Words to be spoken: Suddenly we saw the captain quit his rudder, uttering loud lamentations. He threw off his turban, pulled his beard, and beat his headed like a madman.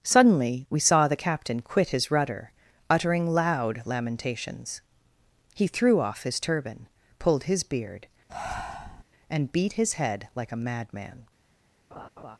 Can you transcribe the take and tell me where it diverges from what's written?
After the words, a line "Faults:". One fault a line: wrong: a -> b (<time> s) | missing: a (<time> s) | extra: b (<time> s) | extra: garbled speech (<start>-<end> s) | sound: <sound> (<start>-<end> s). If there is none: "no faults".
Suddenly we saw the captain quit his rudder, uttering loud lamentations. He threw off his turban, pulled his beard, and beat his head like a madman.
Faults:
sound: breath (8.3-9.0 s)
wrong: headed -> head (9.9 s)
sound: laugh (11.9-12.4 s)